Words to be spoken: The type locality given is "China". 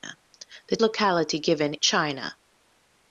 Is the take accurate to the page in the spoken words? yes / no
no